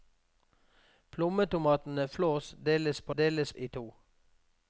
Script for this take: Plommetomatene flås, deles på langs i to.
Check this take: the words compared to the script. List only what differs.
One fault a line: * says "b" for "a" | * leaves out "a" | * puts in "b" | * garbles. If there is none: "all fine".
* says "deles" for "langs"